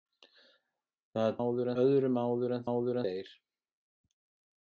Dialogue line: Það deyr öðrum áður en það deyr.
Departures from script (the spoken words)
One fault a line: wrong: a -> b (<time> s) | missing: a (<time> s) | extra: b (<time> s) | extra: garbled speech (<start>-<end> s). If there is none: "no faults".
wrong: deyr -> áður (1.4 s)
wrong: það -> áður (2.7 s)